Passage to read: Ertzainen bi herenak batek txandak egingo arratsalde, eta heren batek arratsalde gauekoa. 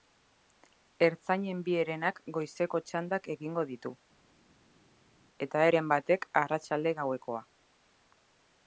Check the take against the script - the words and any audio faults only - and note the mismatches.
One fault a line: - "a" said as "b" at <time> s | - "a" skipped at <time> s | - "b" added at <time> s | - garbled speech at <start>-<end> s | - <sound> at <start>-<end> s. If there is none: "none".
- "batek" said as "goizeko" at 2.4 s
- "arratsalde" said as "ditu" at 3.7 s